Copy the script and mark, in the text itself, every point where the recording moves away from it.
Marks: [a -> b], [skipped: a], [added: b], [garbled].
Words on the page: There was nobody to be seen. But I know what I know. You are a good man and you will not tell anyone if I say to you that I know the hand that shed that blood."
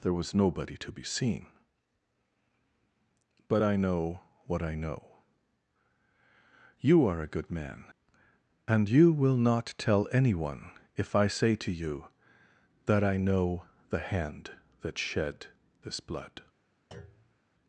There was nobody to be seen. But I know what I know. You are a good man and you will not tell anyone if I say to you that I know the hand that shed [that -> this] blood."